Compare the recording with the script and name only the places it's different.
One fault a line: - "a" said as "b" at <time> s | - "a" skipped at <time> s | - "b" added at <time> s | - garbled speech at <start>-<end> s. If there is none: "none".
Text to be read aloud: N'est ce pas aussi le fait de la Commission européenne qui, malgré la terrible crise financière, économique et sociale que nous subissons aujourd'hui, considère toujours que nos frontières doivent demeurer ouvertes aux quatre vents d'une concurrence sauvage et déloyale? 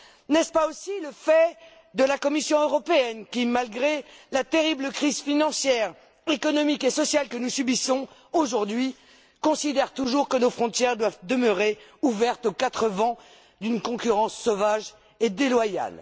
none